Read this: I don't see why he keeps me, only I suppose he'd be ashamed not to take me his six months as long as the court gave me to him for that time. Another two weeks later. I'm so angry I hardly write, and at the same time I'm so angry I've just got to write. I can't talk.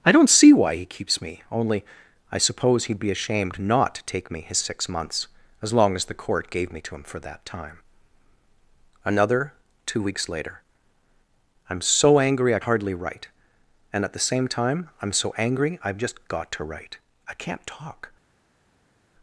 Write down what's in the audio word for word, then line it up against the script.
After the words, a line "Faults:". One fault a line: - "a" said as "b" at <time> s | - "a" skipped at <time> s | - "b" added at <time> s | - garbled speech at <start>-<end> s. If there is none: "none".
I don't see why he keeps me, only I suppose he'd be ashamed not to take me his six months as long as the court gave me to him for that time. Another two weeks later. I'm so angry I hardly write, and at the same time I'm so angry I've just got to write. I can't talk.
Faults:
none